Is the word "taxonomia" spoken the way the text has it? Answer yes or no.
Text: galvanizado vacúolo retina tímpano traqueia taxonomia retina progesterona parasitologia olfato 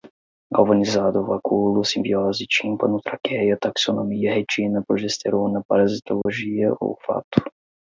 yes